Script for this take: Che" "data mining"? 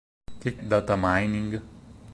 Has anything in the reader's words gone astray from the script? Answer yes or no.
no